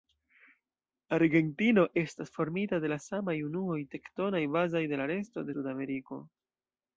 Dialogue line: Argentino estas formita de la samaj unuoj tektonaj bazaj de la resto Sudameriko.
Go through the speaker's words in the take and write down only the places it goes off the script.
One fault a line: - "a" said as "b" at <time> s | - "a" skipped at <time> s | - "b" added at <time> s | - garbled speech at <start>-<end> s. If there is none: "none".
none